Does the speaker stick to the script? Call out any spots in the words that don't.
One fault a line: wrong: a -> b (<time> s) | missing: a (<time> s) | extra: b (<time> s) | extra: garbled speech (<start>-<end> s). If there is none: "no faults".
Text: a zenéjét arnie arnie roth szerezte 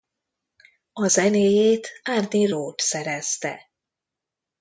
missing: arnie (2.5 s)